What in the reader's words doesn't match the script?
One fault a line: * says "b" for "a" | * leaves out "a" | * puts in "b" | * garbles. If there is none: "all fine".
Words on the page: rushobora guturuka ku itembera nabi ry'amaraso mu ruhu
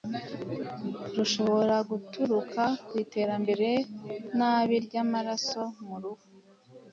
all fine